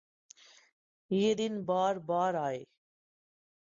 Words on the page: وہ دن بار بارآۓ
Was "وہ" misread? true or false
true